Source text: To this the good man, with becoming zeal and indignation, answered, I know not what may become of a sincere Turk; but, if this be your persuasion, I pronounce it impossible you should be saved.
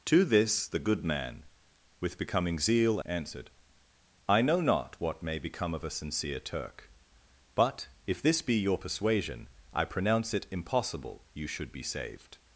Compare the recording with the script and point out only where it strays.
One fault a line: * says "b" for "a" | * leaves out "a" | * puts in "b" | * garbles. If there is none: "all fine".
* leaves out "and indignation"